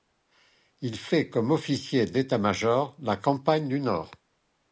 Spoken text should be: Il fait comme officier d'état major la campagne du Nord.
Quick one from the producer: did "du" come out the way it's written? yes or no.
yes